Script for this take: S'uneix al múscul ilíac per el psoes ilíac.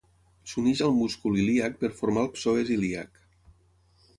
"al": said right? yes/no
yes